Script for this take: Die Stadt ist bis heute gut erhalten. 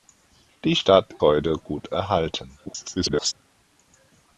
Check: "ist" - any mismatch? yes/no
yes